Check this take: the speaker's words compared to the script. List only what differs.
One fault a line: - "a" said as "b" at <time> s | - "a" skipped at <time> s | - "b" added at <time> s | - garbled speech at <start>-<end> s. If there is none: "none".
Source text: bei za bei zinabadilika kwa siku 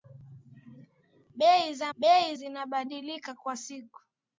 none